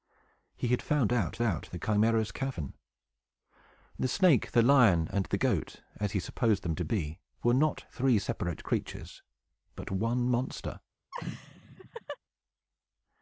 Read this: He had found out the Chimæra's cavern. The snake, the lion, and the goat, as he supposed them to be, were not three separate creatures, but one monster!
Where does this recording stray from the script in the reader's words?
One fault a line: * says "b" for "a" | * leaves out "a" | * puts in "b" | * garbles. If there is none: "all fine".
* puts in "out"